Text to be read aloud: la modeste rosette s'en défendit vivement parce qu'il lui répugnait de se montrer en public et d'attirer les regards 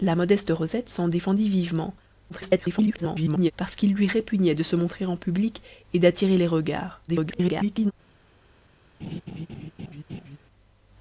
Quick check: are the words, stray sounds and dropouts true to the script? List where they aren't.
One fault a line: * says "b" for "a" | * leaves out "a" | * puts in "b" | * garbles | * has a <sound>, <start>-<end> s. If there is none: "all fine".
* garbles
* garbles
* has a laugh, 9.0-10.4 s